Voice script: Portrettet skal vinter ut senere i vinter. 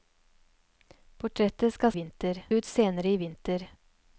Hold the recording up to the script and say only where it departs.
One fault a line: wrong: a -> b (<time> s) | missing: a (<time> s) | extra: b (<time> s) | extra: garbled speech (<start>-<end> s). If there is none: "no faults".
no faults